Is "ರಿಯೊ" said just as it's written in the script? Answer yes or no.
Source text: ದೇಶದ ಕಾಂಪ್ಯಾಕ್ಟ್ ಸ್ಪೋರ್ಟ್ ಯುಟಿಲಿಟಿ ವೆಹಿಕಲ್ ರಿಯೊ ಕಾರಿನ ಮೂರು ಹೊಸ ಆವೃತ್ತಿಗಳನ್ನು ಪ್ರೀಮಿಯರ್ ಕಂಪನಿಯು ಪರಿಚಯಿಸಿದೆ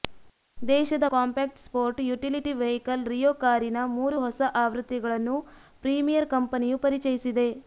yes